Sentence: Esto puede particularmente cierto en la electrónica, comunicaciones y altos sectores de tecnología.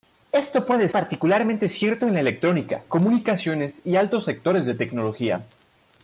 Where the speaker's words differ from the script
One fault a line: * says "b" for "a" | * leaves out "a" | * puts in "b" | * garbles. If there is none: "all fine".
all fine